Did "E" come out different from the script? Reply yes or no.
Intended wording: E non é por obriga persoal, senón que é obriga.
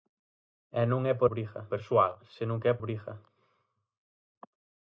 no